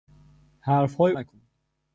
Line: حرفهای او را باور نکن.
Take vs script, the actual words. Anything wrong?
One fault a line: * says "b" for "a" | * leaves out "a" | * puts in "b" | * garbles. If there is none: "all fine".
* leaves out "او را باور"